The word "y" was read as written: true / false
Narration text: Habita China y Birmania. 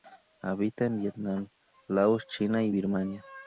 true